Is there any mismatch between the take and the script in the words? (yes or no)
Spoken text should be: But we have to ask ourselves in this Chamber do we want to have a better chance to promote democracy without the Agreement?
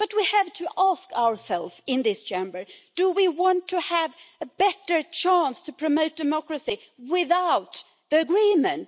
no